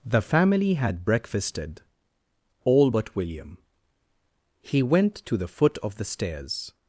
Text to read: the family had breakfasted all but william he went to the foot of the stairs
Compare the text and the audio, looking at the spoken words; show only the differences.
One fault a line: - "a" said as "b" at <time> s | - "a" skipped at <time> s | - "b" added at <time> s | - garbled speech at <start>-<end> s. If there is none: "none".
none